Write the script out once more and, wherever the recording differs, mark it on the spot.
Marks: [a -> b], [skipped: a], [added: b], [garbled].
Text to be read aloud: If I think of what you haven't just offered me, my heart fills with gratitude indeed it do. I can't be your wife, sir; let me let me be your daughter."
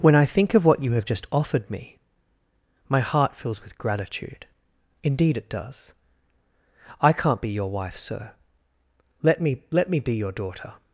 [If -> When] I think of what you [haven't -> have] just offered me, my heart fills with gratitude indeed it [do. -> does] I can't be your wife, sir; let me let me be your daughter."